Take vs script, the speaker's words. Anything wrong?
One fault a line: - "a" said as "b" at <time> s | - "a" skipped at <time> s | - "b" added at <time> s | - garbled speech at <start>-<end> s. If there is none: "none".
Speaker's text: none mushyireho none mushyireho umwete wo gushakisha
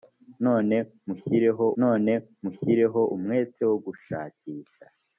none